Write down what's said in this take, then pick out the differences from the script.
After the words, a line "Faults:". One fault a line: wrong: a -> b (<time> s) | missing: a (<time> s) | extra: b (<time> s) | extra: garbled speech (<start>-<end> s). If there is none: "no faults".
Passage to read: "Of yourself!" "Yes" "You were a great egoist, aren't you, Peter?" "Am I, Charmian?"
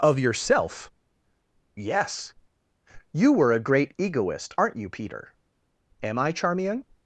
"Of yourself!" "Yes" "You were a great egoist, aren't you, Peter?" "Am I, Charmian?"
Faults:
no faults